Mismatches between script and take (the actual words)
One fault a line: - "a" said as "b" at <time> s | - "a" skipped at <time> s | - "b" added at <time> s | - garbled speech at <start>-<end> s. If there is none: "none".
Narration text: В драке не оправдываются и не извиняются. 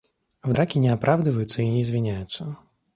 none